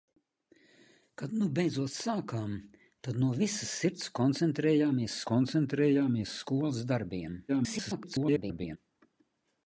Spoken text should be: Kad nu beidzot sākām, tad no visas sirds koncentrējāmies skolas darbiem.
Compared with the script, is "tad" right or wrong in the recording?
right